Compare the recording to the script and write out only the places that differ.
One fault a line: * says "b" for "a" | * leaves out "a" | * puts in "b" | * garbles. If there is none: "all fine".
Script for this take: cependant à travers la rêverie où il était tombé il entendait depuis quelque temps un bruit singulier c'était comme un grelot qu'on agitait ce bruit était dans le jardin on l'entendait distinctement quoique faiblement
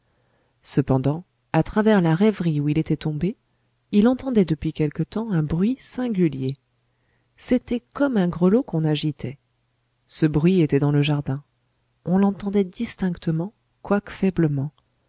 all fine